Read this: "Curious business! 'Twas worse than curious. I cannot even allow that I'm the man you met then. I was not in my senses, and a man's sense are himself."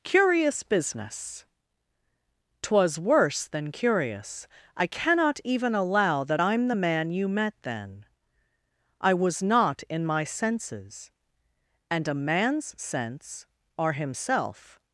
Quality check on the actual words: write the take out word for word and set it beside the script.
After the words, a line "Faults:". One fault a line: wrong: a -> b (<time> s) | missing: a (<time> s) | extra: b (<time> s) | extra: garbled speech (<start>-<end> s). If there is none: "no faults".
"Curious business! 'Twas worse than curious. I cannot even allow that I'm the man you met then. I was not in my senses, and a man's sense are himself."
Faults:
no faults